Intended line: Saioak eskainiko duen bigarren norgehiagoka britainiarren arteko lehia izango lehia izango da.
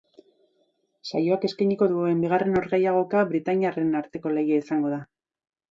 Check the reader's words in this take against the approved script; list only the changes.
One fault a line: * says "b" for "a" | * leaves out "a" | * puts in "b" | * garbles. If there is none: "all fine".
* leaves out "lehia izango"